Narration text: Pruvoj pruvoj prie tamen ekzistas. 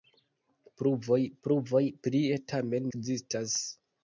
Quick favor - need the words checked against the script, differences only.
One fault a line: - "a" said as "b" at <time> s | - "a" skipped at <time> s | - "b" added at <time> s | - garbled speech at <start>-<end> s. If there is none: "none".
none